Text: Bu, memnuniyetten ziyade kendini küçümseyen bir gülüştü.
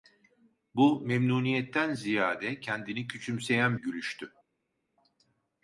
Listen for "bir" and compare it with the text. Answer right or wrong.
wrong